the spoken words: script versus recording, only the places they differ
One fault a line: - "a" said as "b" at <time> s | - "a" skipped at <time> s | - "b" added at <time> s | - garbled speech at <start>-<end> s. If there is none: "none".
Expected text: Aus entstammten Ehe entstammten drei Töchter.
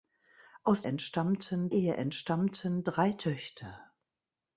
none